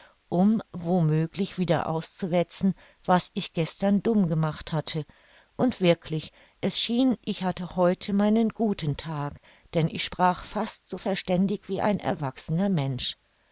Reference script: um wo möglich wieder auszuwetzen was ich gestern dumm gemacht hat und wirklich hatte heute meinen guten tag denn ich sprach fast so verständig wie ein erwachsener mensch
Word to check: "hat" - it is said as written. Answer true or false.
false